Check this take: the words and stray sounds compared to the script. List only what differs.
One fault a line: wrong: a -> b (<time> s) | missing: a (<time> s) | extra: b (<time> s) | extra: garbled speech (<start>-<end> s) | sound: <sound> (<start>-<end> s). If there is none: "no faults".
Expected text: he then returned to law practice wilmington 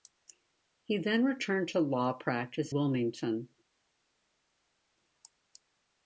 no faults